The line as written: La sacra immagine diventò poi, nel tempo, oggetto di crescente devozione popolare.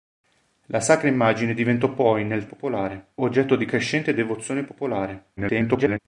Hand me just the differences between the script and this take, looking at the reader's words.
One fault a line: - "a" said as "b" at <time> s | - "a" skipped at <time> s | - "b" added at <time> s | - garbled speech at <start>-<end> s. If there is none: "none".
- "tempo" said as "popolare" at 2.4 s
- garbled speech at 5.4-6.0 s